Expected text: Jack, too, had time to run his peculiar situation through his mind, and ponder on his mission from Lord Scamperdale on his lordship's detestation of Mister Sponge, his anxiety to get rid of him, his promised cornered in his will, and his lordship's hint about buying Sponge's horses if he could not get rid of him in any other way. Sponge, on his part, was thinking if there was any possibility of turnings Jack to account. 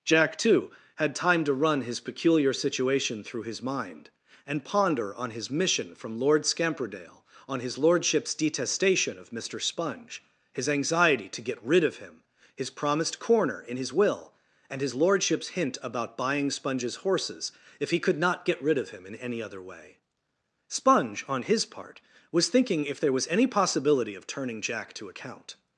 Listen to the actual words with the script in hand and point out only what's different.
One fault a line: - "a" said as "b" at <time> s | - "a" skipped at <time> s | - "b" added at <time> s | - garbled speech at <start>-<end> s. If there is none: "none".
- "cornered" said as "corner" at 13.2 s
- "turnings" said as "turning" at 24.3 s